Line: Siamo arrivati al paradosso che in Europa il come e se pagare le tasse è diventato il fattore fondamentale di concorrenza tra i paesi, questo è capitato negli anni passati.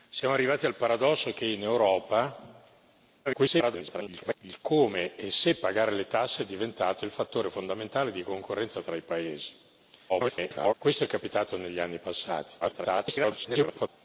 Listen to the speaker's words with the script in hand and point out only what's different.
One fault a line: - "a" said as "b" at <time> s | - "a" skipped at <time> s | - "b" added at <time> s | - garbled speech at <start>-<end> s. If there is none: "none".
- garbled speech at 3.2-4.3 s
- garbled speech at 10.1-10.7 s
- garbled speech at 12.6-13.9 s